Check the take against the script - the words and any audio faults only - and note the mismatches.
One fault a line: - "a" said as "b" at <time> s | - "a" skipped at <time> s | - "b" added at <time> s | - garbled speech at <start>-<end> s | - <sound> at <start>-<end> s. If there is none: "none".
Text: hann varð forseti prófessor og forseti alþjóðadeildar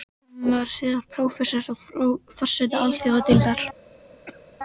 - "forseti" said as "síðar" at 0.8 s
- cough at 4.3-4.6 s